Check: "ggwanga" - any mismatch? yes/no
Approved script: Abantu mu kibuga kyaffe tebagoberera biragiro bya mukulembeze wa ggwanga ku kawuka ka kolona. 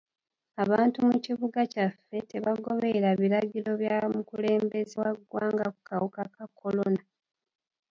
no